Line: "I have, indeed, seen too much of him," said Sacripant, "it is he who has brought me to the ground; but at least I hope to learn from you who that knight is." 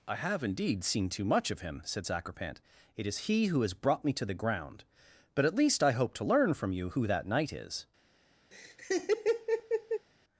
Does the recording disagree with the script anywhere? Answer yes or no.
no